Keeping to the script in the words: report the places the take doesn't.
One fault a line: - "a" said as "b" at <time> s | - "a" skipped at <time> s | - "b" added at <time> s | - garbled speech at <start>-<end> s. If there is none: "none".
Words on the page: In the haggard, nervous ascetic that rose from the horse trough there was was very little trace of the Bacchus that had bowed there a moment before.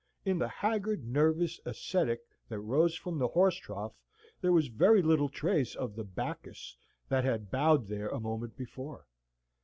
- "was" skipped at 4.7 s